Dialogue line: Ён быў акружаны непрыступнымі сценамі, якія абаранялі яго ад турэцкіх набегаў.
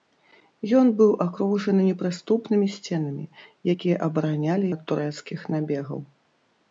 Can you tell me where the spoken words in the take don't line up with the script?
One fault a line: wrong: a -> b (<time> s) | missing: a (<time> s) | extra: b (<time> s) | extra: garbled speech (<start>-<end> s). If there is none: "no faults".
missing: яго (4.7 s)